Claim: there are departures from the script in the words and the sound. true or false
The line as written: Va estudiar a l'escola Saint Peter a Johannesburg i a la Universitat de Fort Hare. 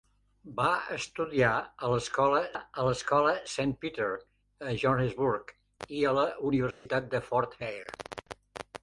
true